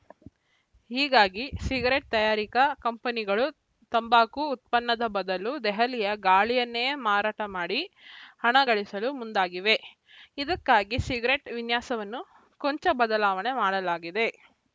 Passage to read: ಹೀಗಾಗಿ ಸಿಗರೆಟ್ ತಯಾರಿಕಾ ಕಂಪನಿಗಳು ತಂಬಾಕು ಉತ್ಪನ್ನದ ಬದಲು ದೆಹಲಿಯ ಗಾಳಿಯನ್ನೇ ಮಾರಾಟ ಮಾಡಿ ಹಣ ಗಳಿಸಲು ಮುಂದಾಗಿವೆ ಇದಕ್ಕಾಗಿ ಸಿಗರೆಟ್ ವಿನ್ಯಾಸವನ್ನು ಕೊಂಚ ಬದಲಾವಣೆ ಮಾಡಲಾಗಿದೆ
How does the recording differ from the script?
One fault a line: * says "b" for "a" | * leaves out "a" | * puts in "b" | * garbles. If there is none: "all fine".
all fine